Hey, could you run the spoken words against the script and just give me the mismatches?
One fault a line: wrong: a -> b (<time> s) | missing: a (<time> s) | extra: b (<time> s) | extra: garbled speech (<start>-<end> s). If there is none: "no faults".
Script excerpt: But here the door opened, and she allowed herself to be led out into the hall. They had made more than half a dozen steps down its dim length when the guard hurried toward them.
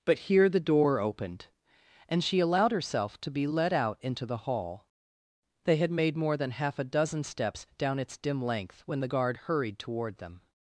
no faults